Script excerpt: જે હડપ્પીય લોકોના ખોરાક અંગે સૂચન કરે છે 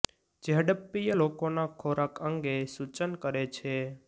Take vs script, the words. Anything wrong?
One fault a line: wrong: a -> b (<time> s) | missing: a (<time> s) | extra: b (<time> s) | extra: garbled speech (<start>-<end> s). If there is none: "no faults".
no faults